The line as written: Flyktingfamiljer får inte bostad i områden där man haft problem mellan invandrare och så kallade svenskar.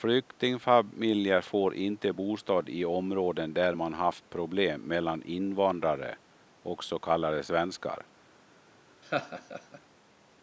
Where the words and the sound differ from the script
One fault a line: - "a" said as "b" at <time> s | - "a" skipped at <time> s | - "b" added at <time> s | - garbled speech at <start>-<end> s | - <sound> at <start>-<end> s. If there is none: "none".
- laugh at 9.0-9.8 s